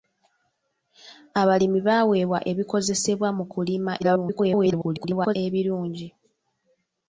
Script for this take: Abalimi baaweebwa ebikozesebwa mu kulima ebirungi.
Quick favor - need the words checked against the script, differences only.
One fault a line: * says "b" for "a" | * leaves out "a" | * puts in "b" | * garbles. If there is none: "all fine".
* garbles